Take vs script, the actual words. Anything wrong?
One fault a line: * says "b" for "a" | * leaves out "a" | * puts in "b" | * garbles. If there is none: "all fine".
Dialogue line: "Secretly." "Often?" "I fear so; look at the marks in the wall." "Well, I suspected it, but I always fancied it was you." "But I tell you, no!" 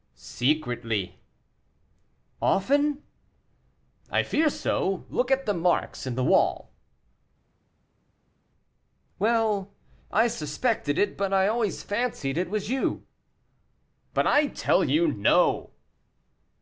all fine